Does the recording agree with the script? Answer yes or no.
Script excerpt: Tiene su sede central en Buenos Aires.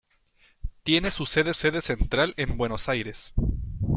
no